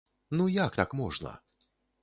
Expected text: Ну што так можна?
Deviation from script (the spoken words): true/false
true